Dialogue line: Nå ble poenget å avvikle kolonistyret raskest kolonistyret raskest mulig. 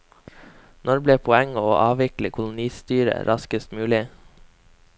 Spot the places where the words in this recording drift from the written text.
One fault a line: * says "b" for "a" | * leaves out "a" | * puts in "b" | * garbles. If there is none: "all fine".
* leaves out "kolonistyret raskest"